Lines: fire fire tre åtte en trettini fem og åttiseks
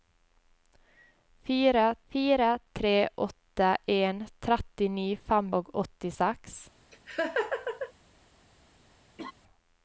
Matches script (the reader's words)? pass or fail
pass